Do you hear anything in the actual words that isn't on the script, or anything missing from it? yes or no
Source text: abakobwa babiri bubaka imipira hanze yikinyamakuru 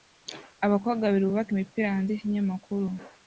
no